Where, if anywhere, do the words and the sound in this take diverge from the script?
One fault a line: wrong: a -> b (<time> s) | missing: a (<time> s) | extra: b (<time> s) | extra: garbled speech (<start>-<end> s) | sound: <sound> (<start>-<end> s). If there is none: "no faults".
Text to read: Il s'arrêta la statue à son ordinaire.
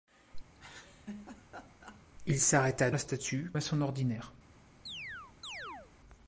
sound: laugh (0.5-2.0 s)
sound: chirp (4.9-5.9 s)